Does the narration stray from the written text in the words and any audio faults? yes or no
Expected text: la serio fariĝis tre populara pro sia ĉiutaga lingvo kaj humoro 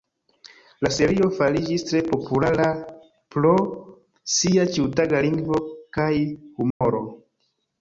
yes